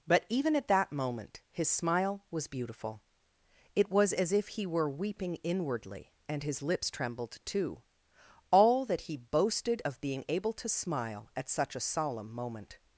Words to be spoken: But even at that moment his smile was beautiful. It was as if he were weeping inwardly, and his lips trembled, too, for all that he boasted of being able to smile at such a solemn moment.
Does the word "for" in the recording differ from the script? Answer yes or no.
yes